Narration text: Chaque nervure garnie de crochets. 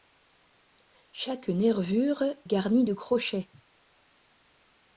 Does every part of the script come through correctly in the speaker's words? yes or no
yes